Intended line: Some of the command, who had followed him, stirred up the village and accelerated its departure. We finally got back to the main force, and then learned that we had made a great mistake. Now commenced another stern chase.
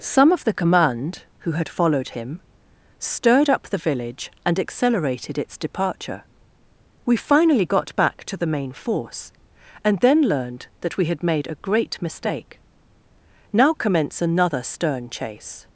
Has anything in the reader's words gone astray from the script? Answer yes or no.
yes